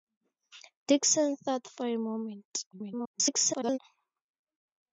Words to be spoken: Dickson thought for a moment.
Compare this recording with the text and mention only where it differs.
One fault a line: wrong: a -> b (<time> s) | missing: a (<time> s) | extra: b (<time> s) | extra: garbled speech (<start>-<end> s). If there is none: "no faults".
extra: garbled speech (2.7-3.8 s)